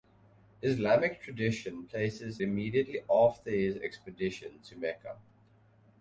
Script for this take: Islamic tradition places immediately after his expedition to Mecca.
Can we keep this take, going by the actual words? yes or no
yes